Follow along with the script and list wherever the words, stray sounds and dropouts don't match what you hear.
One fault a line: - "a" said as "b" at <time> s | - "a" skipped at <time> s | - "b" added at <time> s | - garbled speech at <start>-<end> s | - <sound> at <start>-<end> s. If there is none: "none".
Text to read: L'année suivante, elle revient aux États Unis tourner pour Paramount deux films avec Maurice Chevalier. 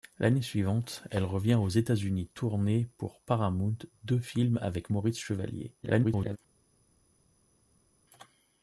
- garbled speech at 5.8-6.4 s